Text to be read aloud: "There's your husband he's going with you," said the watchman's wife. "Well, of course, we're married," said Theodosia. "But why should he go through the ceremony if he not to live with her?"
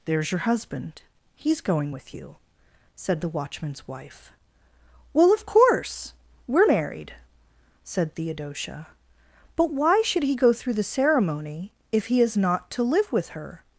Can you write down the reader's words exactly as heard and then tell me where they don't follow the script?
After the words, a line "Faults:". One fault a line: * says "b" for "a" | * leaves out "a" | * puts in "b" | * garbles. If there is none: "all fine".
"There's your husband he's going with you," said the watchman's wife. "Well, of course, we're married," said Theodosia. "But why should he go through the ceremony if he is not to live with her?"
Faults:
* puts in "is"